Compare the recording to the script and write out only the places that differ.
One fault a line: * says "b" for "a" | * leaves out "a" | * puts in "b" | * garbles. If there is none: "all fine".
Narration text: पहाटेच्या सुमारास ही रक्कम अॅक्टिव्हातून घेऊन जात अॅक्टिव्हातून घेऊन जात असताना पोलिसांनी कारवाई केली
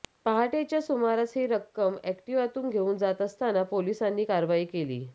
* leaves out "अॅक्टिव्हातून घेऊन जात"